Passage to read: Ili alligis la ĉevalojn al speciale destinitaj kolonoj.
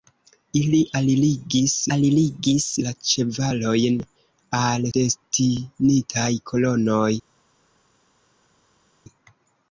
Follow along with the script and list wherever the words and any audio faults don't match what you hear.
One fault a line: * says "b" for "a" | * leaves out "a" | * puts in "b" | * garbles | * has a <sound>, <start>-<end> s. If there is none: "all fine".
* puts in "alligis"
* leaves out "speciale"